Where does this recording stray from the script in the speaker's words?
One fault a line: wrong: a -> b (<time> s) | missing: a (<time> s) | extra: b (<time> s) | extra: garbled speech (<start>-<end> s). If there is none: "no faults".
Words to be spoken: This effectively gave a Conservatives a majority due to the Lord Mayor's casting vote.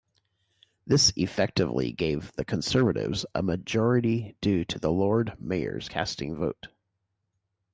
wrong: a -> the (2.3 s)